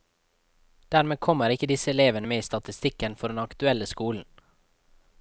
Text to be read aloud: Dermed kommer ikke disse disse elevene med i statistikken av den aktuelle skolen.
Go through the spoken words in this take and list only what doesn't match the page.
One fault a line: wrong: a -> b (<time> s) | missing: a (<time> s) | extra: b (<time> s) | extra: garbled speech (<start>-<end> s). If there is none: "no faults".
missing: disse (1.9 s)
wrong: av -> for (3.2 s)